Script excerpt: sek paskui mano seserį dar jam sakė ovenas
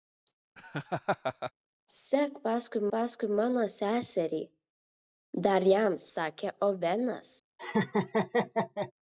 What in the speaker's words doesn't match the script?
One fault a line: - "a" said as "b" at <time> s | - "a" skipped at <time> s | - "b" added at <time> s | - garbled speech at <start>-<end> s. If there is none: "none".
- "paskui" added at 2.9 s